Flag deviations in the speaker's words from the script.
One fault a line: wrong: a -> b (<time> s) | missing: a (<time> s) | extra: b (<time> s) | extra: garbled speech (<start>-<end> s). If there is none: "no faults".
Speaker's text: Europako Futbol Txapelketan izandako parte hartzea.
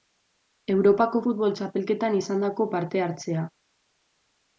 no faults